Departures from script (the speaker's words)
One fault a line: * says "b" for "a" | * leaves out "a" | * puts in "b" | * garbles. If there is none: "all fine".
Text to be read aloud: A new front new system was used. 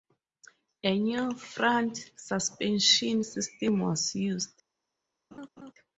* says "suspension" for "new"